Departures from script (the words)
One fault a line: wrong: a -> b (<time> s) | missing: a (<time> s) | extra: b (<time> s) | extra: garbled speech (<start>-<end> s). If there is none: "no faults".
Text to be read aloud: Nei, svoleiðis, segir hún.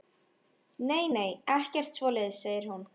extra: nei ekkert (1.2 s)